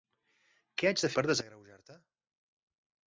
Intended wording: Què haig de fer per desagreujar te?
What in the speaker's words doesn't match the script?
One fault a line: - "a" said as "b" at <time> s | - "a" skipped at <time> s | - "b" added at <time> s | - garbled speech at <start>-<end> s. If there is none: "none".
- "fer" skipped at 1.1 s